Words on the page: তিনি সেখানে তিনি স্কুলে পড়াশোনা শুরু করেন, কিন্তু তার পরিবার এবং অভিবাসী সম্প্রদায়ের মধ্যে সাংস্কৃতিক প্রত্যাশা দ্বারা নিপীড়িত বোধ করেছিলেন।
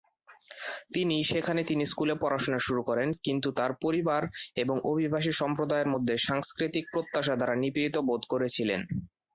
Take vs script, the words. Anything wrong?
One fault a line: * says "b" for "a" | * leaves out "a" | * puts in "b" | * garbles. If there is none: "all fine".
all fine